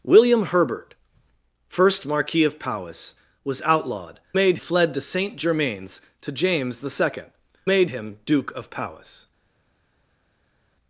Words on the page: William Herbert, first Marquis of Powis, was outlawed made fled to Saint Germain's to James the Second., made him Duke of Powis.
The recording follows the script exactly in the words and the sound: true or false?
true